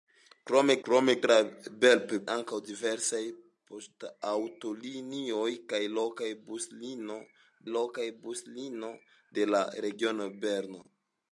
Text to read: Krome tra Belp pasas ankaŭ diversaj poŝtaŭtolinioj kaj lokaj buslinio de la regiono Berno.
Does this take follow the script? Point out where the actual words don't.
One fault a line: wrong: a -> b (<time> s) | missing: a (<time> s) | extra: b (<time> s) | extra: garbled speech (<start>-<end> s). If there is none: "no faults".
extra: krome (0.9 s)
missing: pasas (2.1 s)
extra: lokaj buslinio (7.7 s)